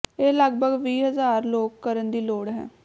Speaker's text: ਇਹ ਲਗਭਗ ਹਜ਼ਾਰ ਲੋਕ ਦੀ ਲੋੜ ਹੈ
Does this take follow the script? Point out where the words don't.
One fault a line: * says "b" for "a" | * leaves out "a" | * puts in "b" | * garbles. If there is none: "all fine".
* puts in "ਵੀਹ"
* puts in "ਕਰਨ"